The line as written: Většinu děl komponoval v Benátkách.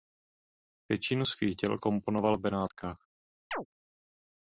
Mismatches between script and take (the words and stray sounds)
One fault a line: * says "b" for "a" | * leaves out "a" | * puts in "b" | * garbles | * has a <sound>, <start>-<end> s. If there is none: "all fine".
* puts in "svých"
* has a chirp, 3.5-3.7 s